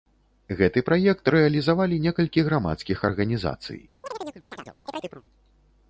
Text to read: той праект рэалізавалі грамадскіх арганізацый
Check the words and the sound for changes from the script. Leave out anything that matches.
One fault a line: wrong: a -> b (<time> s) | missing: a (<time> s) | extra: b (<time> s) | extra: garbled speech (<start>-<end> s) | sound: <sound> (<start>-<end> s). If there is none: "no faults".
wrong: той -> гэты (0.6 s)
extra: некалькі (2.0 s)
sound: chirp (4.0-5.2 s)